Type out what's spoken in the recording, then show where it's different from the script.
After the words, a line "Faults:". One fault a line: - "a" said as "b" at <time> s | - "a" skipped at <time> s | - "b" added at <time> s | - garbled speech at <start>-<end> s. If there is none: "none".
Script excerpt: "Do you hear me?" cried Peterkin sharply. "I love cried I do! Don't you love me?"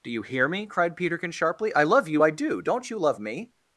"Do you hear me?" cried Peterkin sharply. "I love you I do! Don't you love me?"
Faults:
- "cried" said as "you" at 2.1 s